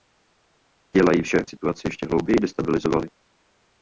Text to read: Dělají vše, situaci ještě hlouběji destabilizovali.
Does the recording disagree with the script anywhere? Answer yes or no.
no